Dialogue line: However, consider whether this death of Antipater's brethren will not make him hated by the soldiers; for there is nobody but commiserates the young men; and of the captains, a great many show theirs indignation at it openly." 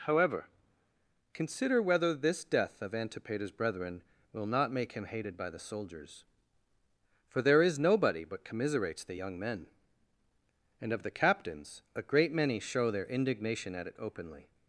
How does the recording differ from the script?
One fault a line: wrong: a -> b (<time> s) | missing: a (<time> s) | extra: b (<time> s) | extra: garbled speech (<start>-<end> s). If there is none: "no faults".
wrong: theirs -> their (12.9 s)